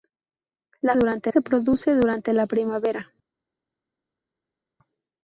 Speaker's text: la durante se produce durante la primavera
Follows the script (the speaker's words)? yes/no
yes